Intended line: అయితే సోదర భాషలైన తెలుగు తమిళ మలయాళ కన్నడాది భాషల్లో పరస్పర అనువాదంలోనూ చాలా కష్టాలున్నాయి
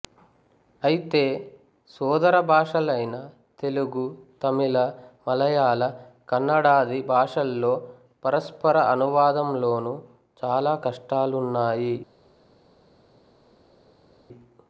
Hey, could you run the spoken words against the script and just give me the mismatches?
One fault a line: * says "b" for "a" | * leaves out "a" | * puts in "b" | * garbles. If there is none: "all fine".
all fine